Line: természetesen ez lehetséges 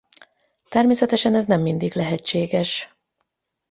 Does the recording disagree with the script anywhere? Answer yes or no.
yes